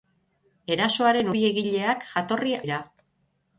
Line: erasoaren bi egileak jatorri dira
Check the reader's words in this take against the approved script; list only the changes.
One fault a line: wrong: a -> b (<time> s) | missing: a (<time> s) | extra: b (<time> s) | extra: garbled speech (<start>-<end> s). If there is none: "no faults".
no faults